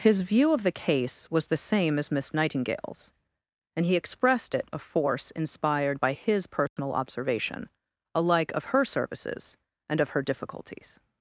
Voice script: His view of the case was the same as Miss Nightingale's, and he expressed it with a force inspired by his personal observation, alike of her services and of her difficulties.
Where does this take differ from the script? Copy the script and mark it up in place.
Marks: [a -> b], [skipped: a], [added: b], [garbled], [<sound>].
His view of the case was the same as Miss Nightingale's, and he expressed it [skipped: with] a force inspired by his personal [dropout] observation, alike of her services and of her difficulties.